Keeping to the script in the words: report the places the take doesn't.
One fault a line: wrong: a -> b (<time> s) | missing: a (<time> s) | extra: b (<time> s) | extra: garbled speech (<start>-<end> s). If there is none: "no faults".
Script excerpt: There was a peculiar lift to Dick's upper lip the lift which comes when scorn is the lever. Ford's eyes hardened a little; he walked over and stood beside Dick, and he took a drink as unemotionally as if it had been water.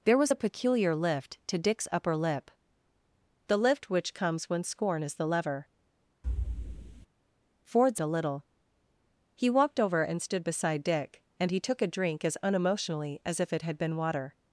missing: eyes hardened (8.0 s)